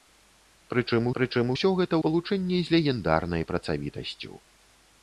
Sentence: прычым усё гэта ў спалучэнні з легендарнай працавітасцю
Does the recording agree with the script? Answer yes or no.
no